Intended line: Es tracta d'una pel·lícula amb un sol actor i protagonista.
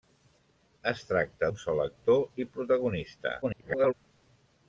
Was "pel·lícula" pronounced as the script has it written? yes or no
no